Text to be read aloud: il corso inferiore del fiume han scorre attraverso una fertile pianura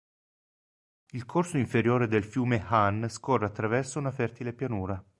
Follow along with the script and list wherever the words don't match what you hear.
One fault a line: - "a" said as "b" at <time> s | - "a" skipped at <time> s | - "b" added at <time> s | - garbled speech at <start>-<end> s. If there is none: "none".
none